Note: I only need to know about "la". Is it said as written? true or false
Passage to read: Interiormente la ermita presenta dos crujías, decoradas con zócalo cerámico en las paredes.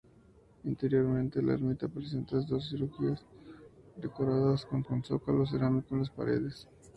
true